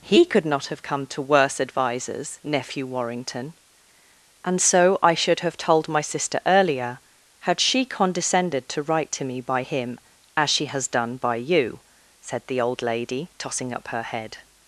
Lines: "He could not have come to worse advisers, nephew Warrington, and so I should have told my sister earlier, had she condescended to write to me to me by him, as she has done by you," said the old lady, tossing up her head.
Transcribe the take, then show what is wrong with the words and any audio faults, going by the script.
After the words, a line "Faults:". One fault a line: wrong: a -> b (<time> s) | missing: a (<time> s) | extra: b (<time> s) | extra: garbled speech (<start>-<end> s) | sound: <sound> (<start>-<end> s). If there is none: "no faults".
"He could not have come to worse advisers, nephew Warrington, and so I should have told my sister earlier, had she condescended to write to me by him, as she has done by you," said the old lady, tossing up her head.
Faults:
missing: to me (9.4 s)